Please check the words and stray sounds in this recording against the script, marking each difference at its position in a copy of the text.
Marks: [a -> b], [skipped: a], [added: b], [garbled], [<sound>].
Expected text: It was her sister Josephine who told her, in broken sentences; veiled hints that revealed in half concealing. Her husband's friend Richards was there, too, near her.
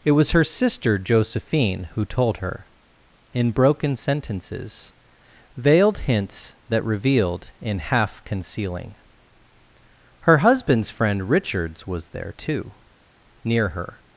It was her sister Josephine who told her, in broken sentences; veiled hints that revealed in half concealing. Her husband's friend Richards was there, too, near her.